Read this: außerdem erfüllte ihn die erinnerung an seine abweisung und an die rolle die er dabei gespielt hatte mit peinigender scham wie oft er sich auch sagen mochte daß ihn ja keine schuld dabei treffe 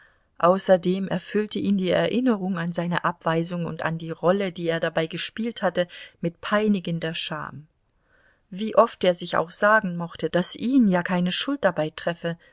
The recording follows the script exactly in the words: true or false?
true